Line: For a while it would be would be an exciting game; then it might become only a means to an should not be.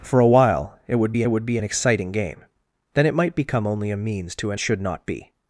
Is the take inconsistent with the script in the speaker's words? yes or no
no